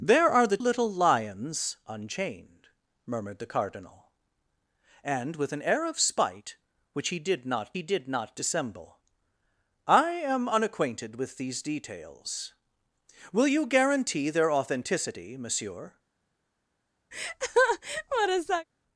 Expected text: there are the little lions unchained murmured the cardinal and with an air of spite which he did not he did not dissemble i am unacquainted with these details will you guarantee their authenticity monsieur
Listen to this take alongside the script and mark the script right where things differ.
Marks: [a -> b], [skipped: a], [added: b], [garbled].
there are the little lions unchained murmured the cardinal and with an air of spite which he did not he did not dissemble i am unacquainted with these details will you guarantee their authenticity monsieur